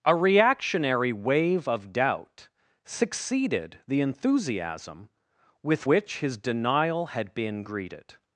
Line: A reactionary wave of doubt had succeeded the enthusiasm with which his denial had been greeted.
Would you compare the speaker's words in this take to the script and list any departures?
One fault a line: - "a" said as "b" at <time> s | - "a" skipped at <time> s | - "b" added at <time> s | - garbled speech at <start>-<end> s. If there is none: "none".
- "had" skipped at 2.5 s